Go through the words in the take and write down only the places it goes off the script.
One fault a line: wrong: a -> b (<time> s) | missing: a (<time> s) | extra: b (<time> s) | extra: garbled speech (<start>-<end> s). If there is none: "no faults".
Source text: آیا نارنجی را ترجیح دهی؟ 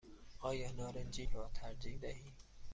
no faults